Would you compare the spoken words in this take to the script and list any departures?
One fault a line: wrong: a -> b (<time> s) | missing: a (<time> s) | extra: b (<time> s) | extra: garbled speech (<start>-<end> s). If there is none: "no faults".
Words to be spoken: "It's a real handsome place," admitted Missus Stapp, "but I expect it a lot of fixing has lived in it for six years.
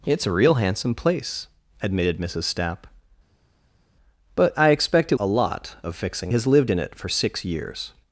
no faults